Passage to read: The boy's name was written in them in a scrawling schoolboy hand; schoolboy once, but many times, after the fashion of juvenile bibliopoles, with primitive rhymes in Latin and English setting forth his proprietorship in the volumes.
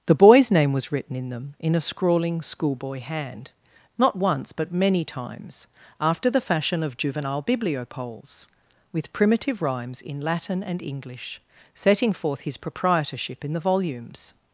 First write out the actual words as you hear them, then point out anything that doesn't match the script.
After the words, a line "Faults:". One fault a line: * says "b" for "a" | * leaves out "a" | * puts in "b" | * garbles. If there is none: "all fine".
The boy's name was written in them in a scrawling schoolboy hand; not once, but many times, after the fashion of juvenile bibliopoles, with primitive rhymes in Latin and English setting forth his proprietorship in the volumes.
Faults:
* says "not" for "schoolboy"